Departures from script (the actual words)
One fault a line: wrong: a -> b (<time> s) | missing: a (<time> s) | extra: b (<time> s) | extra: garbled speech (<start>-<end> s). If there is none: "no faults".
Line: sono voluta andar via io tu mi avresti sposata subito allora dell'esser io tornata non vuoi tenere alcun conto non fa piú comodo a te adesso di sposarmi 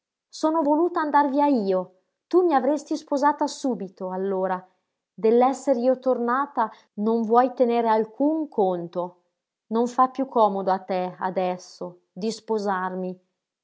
no faults